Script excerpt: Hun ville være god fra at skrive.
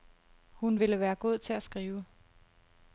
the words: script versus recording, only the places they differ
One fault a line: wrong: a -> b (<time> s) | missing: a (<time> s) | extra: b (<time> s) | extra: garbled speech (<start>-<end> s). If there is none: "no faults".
wrong: fra -> til (1.4 s)